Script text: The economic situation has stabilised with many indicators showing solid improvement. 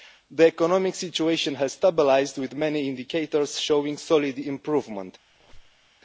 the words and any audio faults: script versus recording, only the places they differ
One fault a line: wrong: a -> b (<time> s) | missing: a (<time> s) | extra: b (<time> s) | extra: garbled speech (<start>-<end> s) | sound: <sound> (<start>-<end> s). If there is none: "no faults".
sound: squeak (5.3-5.9 s)